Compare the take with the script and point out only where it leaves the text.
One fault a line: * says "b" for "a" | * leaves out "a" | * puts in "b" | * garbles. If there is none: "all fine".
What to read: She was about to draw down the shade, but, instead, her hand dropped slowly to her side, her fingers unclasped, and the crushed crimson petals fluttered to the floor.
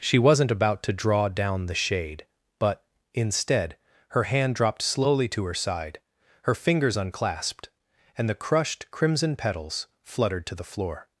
* says "wasn't" for "was"